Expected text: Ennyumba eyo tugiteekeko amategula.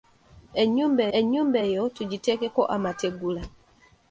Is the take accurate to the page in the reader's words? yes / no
no